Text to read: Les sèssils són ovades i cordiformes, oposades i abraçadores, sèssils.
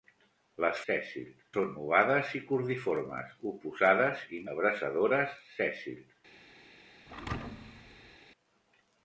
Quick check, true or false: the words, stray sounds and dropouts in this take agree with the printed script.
false